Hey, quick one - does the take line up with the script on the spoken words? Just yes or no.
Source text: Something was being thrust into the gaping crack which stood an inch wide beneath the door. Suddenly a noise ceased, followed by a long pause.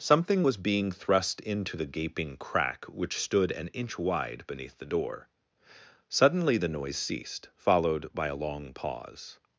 no